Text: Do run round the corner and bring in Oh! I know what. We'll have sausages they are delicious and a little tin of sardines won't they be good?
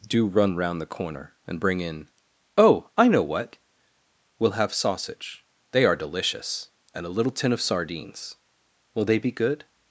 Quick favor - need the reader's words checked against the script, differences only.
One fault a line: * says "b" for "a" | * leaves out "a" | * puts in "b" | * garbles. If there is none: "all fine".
* says "sausage" for "sausages"
* says "will" for "won't"